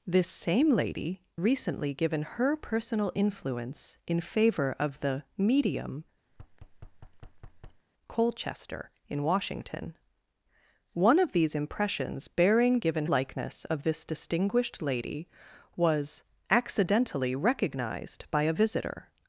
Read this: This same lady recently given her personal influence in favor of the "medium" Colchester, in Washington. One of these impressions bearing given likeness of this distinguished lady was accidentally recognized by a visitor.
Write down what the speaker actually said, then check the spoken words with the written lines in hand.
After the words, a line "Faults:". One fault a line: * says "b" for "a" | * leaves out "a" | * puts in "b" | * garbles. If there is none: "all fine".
This same lady recently given her personal influence in favor of the "medium" Colchester, in Washington. One of these impressions bearing given likeness of this distinguished lady was accidentally recognized by a visitor.
Faults:
all fine